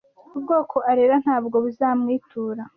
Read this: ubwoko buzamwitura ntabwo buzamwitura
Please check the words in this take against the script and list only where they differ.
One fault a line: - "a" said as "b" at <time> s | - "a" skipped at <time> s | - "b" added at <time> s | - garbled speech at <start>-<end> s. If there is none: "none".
- "buzamwitura" said as "arera" at 0.9 s